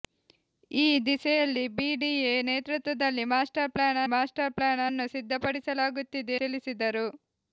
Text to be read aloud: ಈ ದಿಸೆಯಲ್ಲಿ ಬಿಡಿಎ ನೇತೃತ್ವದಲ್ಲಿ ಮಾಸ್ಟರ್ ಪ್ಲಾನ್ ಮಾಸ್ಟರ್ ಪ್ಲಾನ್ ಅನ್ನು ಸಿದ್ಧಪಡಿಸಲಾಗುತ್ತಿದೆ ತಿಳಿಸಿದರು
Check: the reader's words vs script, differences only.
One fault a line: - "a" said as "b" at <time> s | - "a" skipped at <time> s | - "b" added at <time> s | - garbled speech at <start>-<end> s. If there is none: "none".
none